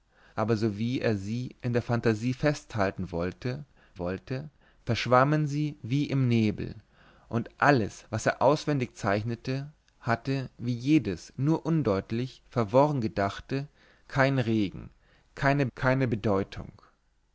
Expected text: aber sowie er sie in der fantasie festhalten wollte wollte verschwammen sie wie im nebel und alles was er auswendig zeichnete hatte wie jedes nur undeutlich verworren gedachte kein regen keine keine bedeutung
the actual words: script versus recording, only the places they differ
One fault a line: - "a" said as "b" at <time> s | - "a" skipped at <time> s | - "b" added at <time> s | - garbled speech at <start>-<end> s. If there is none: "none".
none